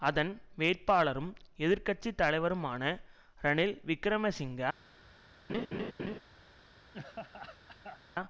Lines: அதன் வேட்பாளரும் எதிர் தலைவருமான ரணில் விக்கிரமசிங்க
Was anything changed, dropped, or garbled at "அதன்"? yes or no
no